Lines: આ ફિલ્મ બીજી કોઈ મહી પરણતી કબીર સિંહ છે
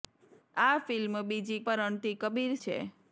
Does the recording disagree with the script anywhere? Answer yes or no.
yes